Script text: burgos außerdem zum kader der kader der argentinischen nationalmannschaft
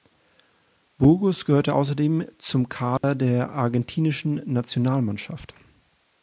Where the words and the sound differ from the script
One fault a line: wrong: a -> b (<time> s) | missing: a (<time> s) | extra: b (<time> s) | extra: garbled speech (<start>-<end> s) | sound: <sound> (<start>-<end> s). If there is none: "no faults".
extra: gehörte (1.4 s)
sound: dropout (3.0-3.0 s)
missing: kader der (3.5 s)